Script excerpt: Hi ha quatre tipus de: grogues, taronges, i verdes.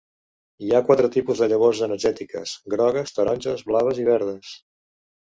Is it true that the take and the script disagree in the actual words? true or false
true